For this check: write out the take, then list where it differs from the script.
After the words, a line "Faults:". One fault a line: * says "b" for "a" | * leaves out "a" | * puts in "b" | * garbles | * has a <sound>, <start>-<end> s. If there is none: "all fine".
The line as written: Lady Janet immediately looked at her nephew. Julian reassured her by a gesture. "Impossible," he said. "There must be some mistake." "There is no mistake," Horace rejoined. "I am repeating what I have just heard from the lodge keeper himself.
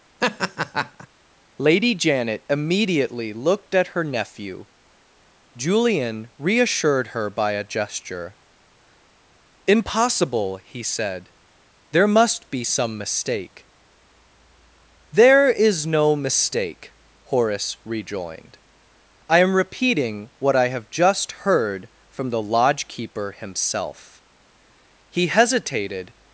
Lady Janet immediately looked at her nephew. Julian reassured her by a gesture. "Impossible," he said. "There must be some mistake." "There is no mistake," Horace rejoined. "I am repeating what I have just heard from the lodge keeper himself. He hesitated
Faults:
* has a laugh, 0.2-1.1 s
* puts in "He hesitated"